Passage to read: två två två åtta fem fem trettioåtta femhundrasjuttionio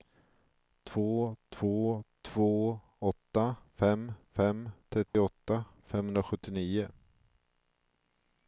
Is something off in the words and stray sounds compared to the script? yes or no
yes